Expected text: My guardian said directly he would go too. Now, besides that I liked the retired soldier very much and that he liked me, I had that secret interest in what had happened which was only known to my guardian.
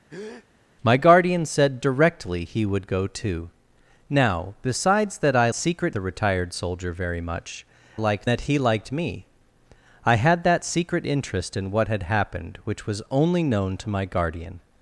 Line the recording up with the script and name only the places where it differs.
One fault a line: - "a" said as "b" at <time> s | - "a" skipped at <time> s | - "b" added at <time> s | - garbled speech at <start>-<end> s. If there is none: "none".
- "liked" said as "secret" at 5.5 s
- "and" said as "liked" at 7.9 s